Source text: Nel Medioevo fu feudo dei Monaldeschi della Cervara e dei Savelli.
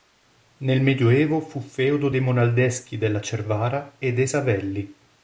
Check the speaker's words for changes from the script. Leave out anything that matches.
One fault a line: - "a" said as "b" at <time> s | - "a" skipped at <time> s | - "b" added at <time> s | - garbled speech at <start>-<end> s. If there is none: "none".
none